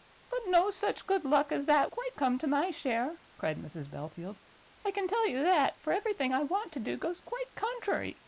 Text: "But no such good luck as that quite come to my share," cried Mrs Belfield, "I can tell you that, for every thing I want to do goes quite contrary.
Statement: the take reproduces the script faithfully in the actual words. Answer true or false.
true